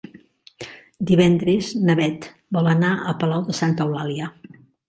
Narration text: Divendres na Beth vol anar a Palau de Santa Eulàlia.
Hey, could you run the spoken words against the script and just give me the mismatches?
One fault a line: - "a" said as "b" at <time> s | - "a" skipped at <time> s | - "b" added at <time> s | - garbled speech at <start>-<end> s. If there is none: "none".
none